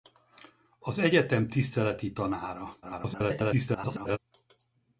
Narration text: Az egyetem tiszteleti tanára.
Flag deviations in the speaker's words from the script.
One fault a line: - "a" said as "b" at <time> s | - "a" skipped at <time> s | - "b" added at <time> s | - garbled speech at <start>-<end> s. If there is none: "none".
- garbled speech at 2.8-4.2 s